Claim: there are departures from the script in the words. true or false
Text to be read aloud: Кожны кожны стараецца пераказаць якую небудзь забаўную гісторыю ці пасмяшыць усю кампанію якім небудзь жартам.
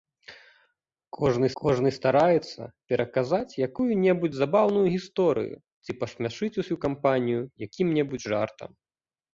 false